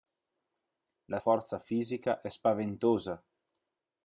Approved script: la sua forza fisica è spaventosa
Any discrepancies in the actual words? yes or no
yes